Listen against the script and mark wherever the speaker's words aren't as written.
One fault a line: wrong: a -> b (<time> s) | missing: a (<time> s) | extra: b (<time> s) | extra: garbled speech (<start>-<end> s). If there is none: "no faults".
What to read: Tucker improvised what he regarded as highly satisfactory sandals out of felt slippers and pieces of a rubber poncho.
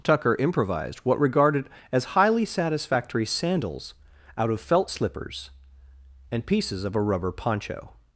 missing: he (1.2 s)